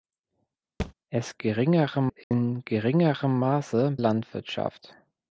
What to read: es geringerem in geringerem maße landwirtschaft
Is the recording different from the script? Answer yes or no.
no